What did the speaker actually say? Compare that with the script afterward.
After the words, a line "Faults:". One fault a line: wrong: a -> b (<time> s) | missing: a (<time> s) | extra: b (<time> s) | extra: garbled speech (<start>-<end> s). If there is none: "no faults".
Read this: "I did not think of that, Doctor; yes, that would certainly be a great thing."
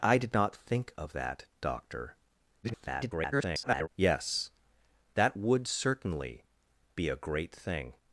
"I did not think of that, Doctor; [garbled] yes, that would certainly be a great thing."
Faults:
extra: garbled speech (2.6-3.9 s)